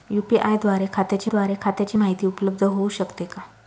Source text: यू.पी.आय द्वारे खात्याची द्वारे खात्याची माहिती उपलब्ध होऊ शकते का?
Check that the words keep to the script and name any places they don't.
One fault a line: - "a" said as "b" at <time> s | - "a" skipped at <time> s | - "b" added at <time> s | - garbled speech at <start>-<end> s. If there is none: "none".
none